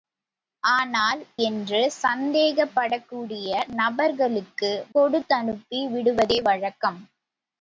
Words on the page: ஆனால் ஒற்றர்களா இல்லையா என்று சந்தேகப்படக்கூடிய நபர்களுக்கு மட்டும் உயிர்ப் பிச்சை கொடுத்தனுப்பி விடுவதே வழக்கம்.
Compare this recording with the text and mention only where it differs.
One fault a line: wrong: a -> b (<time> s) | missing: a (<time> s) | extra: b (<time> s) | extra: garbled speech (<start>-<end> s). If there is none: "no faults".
missing: ஒற்றர்களா இல்லையா (1.2 s)
missing: மட்டும் உயிர்ப் பிச்சை (4.7 s)